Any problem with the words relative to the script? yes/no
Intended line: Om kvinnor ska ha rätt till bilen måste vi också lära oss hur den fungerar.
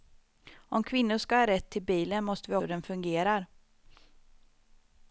yes